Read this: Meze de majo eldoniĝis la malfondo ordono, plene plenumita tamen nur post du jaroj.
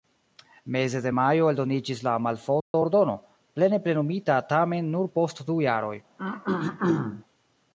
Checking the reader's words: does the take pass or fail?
pass